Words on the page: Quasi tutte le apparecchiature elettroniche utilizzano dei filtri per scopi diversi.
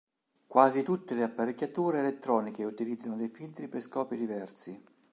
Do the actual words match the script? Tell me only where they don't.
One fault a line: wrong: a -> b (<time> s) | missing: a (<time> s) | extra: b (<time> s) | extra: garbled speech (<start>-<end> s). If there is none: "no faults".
no faults